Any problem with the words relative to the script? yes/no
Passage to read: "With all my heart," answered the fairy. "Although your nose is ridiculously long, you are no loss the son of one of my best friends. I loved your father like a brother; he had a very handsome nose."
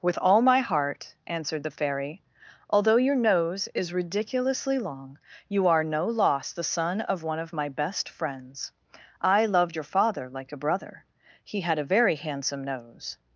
no